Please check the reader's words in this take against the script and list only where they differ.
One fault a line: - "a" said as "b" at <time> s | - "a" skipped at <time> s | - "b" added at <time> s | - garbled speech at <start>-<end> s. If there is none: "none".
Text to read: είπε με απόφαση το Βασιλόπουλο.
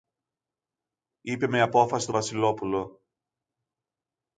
none